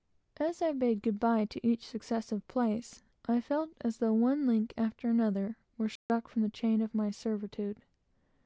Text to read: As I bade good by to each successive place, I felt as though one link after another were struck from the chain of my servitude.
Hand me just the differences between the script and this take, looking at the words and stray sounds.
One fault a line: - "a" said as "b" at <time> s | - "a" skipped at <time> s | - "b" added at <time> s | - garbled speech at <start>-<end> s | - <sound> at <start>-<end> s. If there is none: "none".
- dropout at 6.0-6.1 s